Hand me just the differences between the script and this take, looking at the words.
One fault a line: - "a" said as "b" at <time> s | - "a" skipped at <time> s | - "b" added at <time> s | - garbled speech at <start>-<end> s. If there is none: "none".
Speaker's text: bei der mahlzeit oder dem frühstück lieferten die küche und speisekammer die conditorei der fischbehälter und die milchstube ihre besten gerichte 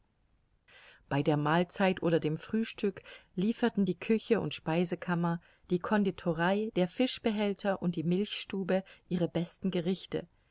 none